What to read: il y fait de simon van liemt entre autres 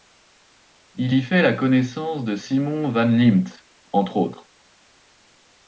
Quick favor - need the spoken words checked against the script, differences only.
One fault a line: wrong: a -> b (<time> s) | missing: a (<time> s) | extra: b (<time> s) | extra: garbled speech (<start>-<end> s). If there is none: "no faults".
extra: la connaissance (1.4 s)